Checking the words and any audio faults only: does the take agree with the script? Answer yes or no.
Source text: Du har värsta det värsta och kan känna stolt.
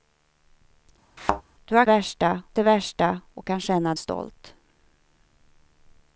no